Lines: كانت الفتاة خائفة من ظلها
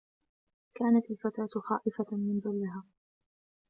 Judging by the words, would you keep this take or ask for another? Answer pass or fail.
pass